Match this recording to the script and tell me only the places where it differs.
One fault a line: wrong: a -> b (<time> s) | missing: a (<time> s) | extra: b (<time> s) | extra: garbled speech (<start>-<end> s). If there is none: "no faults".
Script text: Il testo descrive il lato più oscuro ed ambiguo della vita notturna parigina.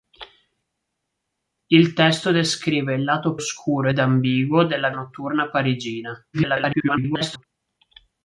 missing: più (3.4 s)
missing: vita (4.9 s)
extra: garbled speech (6.3-7.4 s)